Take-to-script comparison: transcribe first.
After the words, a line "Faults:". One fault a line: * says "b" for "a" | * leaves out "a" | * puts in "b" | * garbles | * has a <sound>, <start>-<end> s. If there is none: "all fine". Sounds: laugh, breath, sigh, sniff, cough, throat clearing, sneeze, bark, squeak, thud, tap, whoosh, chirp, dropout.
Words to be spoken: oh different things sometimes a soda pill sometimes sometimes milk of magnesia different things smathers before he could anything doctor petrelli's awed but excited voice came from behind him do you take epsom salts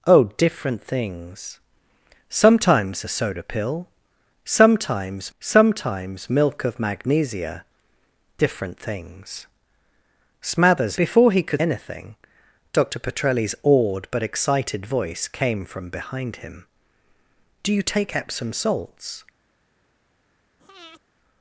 oh different things sometimes a soda pill sometimes sometimes milk of magnesia different things smathers before he could anything doctor petrelli's awed but excited voice came from behind him do you take epsom salts
Faults:
* has a breath, 20.6-21.0 s